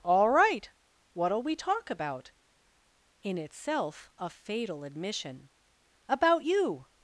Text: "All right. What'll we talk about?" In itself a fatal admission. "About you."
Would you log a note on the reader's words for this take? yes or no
no